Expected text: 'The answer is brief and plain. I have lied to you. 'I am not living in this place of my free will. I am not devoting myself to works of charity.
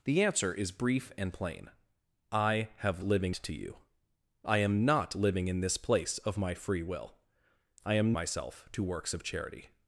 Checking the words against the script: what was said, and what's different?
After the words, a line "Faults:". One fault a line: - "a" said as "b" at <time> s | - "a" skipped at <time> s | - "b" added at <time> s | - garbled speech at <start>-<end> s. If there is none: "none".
'The answer is brief and plain. I have living to you. 'I am not living in this place of my free will. I am myself to works of charity.
Faults:
- "lied" said as "living" at 3.0 s
- "not devoting" skipped at 8.2 s